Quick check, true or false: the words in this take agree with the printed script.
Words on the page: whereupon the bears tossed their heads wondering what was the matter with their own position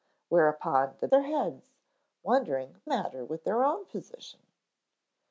false